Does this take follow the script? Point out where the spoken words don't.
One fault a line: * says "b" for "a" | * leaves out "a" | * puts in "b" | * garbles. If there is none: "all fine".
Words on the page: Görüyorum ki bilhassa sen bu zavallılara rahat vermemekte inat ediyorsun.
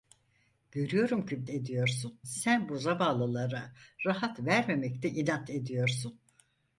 * says "ediyorsun" for "bilhassa"